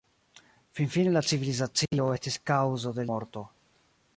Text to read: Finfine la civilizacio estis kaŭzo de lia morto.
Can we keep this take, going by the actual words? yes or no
no